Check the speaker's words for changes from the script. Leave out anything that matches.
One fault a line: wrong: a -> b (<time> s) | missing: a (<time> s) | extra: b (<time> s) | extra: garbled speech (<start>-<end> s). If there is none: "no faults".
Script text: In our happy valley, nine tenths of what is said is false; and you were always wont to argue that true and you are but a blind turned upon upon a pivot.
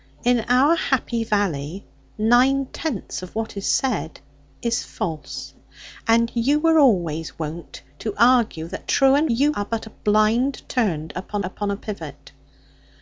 no faults